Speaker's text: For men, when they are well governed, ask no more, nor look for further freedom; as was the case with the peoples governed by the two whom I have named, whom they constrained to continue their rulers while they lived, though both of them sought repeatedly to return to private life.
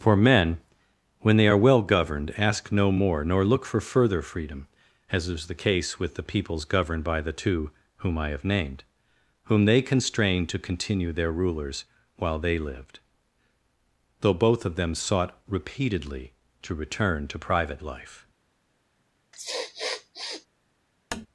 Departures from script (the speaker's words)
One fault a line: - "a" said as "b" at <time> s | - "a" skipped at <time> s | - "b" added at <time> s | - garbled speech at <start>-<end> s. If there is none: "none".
- "was" said as "is" at 5.3 s